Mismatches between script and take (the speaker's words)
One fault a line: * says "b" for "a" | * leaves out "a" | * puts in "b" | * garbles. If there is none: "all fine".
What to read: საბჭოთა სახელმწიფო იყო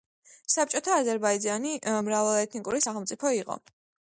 * puts in "აზერბაიჯანი მრავალეთნიკური"